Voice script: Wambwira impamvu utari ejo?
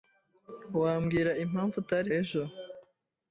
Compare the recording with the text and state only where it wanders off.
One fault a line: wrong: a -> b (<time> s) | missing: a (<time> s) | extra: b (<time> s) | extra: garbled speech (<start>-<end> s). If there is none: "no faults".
no faults